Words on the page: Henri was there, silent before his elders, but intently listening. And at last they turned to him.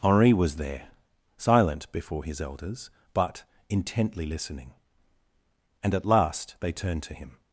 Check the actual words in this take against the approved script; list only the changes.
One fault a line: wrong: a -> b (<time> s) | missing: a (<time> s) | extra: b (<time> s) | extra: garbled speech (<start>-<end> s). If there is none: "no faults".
no faults